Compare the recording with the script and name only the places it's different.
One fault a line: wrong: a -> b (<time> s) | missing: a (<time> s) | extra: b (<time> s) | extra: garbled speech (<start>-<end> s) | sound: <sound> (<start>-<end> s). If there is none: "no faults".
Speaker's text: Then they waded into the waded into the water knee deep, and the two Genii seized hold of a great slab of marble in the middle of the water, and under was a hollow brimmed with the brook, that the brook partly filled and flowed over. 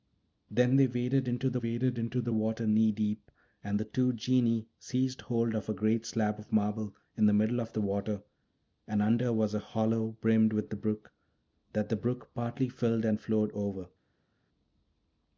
no faults